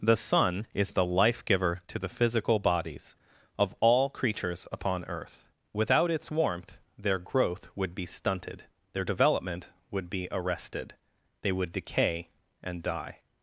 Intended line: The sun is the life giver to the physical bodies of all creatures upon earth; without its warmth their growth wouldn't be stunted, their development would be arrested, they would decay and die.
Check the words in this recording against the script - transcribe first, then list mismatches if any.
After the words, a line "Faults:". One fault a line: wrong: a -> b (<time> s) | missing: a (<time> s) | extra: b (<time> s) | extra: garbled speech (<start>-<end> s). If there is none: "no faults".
The sun is the life giver to the physical bodies of all creatures upon earth; without its warmth their growth would be stunted, their development would be arrested, they would decay and die.
Faults:
wrong: wouldn't -> would (7.8 s)